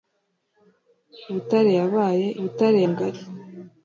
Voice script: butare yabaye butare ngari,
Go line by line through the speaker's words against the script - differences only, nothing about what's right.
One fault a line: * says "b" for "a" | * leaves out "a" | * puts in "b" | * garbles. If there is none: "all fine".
all fine